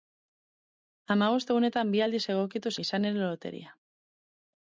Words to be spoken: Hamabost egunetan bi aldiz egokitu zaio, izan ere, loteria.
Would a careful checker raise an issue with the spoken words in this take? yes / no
yes